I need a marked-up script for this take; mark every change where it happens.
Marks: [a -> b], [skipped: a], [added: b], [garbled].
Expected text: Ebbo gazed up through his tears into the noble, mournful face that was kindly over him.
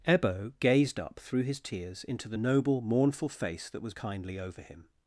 Ebbo gazed up through his tears into the noble, mournful face that was kindly over him.